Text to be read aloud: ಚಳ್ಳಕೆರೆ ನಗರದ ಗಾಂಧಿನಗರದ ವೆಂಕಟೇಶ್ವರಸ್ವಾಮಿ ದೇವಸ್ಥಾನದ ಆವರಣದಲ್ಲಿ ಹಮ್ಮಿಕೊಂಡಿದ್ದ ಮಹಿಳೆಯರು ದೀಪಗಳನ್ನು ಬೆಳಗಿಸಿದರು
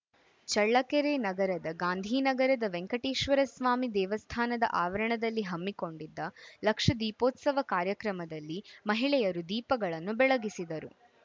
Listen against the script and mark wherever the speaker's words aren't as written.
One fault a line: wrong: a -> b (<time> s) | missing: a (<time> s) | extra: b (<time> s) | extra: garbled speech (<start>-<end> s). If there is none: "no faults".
extra: ಲಕ್ಷ ದೀಪೋತ್ಸವ ಕಾರ್ಯಕ್ರಮದಲ್ಲಿ (6.6 s)